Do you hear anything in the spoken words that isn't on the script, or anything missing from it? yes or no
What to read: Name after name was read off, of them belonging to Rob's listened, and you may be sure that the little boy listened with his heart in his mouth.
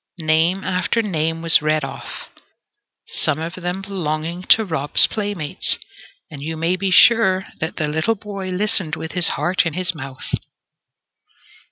yes